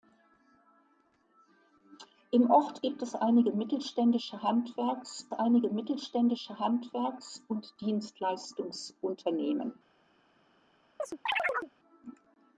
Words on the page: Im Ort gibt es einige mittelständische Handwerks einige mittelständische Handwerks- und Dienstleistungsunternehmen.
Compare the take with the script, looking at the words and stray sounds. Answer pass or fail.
fail